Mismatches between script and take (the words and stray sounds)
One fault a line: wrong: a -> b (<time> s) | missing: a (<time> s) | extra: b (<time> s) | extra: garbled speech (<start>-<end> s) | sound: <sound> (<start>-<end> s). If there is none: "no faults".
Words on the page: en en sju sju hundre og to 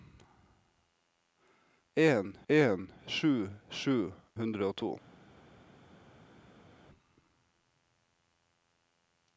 no faults